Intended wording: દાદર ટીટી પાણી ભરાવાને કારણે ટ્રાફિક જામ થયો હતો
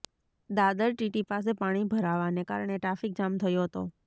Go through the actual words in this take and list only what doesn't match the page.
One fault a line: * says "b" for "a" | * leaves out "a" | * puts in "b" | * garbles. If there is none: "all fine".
* puts in "પાસે"